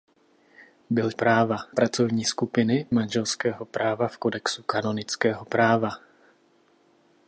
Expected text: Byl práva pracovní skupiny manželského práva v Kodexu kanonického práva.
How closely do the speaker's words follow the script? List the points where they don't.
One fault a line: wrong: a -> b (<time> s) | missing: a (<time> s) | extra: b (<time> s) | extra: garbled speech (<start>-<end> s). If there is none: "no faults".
no faults